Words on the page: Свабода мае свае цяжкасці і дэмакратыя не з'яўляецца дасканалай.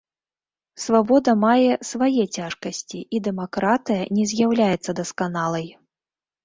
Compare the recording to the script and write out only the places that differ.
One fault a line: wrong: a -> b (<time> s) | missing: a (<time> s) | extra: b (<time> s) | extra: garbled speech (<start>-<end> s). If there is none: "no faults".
no faults